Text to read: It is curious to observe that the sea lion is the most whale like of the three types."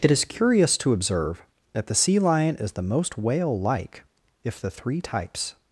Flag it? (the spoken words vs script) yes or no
yes